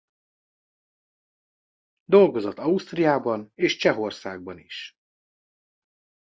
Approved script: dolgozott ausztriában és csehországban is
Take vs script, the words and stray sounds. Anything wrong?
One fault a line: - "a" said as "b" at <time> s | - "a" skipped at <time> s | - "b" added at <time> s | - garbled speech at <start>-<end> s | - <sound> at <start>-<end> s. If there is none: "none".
none